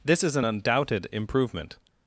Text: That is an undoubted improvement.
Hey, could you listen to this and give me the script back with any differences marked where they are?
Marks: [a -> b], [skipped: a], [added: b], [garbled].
[That -> This] is an undoubted improvement.